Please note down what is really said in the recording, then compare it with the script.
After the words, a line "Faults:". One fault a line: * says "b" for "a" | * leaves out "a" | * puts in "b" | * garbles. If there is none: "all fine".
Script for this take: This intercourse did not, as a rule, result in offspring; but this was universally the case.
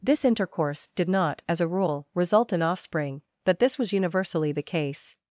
This intercourse did not, as a rule, result in offspring; but this was universally the case.
Faults:
all fine